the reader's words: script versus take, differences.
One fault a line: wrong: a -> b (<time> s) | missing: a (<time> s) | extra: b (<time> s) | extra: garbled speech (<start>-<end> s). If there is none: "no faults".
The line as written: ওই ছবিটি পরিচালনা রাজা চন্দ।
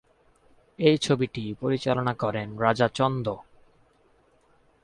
wrong: ওই -> এই (0.8 s)
extra: করেন (2.1 s)